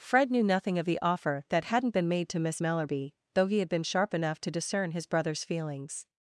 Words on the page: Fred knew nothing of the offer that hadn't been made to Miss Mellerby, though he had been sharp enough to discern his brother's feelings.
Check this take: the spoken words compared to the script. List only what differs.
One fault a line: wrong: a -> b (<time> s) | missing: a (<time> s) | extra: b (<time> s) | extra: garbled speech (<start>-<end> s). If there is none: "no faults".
no faults